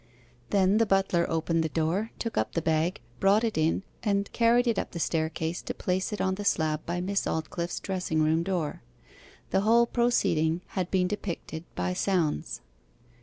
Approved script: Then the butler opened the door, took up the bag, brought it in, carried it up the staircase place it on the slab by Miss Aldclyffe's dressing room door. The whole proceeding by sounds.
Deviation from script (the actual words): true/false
true